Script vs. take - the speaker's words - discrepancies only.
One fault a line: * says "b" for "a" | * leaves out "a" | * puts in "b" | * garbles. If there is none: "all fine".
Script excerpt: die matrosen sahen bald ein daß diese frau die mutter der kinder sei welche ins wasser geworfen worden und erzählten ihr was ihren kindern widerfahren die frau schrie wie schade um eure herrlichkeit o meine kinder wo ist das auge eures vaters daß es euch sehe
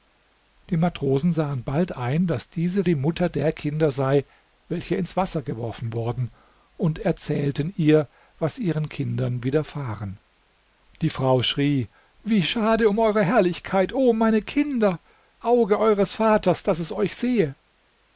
* leaves out "frau"
* leaves out "wo ist das"